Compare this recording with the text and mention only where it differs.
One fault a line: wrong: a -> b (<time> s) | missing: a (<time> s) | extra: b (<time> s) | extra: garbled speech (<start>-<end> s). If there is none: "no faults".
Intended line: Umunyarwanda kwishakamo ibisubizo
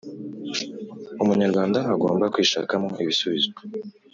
extra: agomba (1.9 s)